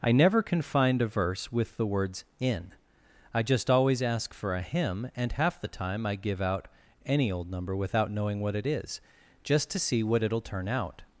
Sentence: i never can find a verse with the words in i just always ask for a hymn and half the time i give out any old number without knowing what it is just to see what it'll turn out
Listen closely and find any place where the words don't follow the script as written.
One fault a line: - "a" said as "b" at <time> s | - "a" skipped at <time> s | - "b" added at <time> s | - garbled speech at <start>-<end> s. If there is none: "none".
none